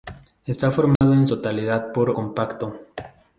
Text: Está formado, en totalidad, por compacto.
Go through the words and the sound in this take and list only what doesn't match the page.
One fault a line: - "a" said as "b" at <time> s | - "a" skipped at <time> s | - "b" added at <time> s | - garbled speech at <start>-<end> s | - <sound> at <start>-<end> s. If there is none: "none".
- dropout at 1.0-1.0 s